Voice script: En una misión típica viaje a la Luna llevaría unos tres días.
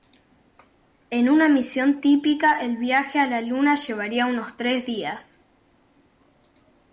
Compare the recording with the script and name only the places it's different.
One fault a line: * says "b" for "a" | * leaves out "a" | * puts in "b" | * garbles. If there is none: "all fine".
* puts in "el"